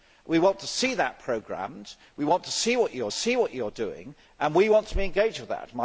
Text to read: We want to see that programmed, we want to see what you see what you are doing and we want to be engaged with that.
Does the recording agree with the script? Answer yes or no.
yes